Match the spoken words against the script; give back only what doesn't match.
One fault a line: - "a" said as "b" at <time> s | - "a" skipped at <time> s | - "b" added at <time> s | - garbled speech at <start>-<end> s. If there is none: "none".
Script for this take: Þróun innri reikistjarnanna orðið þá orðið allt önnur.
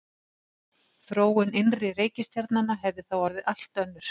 - "orðið" said as "hefði" at 2.9 s